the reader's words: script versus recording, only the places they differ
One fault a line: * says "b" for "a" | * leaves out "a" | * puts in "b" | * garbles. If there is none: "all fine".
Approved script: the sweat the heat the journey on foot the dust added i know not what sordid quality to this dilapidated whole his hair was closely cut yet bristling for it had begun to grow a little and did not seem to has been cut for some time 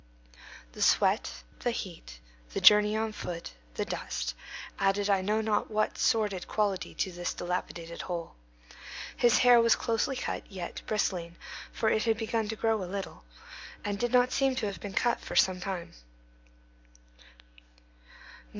* says "have" for "has"